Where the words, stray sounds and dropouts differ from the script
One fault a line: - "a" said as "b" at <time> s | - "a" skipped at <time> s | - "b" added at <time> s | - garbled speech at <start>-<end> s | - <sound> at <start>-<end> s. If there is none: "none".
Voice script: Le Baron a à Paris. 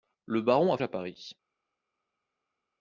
none